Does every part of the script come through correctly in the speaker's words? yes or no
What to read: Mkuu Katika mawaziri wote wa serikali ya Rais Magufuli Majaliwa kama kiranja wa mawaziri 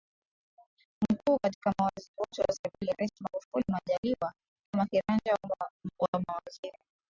yes